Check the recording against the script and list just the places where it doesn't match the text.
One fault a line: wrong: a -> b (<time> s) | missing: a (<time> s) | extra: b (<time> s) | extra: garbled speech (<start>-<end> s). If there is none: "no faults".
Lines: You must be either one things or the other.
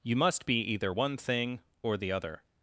wrong: things -> thing (1.2 s)